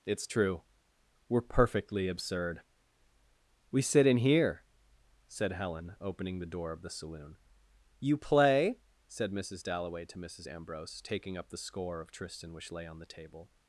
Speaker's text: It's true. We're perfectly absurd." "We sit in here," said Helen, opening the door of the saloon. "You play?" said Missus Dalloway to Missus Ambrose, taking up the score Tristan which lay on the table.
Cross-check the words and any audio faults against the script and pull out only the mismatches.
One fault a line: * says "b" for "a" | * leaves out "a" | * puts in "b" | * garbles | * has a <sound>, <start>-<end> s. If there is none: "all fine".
* puts in "of"